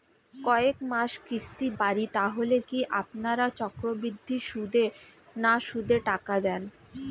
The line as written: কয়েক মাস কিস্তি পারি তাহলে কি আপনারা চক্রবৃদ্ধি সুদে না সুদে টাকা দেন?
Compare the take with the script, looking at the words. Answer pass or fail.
pass